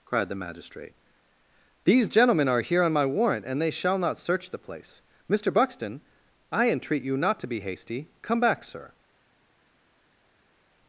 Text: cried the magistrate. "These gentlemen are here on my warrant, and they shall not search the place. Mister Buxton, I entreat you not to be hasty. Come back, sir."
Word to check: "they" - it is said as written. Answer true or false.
true